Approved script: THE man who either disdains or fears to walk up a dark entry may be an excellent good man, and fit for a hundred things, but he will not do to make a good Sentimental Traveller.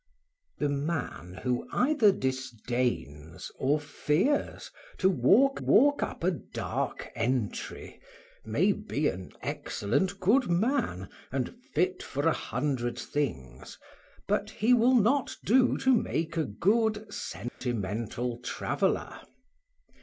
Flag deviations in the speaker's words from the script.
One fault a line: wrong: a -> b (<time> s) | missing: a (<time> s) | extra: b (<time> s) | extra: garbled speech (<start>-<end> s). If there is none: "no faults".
extra: walk (5.6 s)